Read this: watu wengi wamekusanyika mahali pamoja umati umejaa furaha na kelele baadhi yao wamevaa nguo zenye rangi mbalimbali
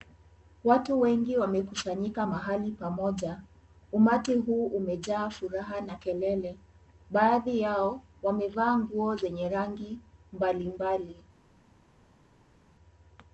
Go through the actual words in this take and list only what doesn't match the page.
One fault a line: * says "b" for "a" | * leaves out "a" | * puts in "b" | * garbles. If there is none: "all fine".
* puts in "huu"